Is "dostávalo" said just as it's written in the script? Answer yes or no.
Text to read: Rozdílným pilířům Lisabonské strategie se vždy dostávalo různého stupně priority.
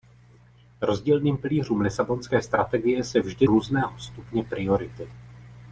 no